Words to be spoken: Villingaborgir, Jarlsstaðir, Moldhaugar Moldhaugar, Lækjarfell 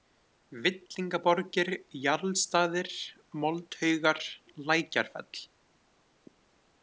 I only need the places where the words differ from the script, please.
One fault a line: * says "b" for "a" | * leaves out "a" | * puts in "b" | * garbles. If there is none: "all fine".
* leaves out "Moldhaugar"